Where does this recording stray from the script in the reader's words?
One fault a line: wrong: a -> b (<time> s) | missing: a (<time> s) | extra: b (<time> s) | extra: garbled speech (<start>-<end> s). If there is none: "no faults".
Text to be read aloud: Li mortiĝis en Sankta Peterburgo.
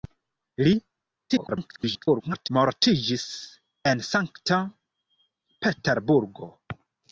extra: garbled speech (1.3-2.5 s)